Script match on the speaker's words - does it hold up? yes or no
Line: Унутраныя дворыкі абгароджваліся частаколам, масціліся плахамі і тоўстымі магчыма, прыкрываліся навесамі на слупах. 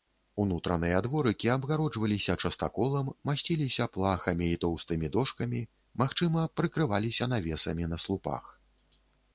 no